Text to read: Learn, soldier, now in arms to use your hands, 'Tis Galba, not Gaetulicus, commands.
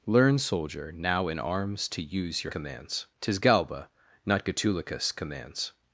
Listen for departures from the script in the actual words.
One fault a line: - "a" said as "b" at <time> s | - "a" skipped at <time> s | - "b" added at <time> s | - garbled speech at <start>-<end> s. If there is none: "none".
- "hands" said as "commands" at 2.5 s